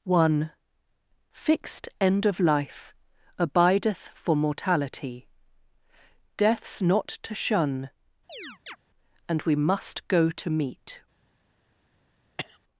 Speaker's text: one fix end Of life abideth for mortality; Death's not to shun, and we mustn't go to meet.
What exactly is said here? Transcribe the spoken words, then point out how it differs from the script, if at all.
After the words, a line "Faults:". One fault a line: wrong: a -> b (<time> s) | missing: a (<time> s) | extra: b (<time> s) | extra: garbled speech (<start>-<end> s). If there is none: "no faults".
one fixed end Of life abideth for mortality; Death's not to shun, and we must go to meet.
Faults:
wrong: fix -> fixed (1.3 s)
wrong: mustn't -> must (9.5 s)